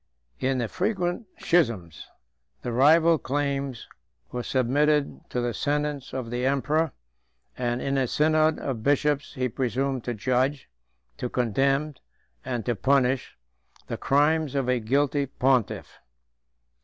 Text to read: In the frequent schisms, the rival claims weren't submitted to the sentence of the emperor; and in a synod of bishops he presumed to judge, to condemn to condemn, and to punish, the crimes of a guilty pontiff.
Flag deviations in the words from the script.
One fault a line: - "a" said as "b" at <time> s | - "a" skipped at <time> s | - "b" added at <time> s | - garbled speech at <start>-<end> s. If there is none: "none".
- "weren't" said as "were" at 4.3 s
- "to condemn" skipped at 11.9 s